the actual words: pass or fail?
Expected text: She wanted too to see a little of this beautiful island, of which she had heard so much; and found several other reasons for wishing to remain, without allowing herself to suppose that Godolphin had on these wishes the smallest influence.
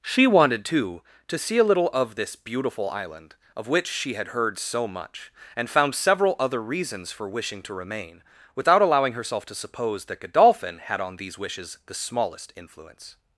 pass